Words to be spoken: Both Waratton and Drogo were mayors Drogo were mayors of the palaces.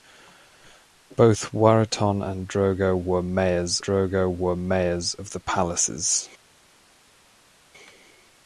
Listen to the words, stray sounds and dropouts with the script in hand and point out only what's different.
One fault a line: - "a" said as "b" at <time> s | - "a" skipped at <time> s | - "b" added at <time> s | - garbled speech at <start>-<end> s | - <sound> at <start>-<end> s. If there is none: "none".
none